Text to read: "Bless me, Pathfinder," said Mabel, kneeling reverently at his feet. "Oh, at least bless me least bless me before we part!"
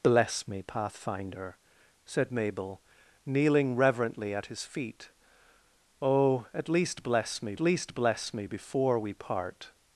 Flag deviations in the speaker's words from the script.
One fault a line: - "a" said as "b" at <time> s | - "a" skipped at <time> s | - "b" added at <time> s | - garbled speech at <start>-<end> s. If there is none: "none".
none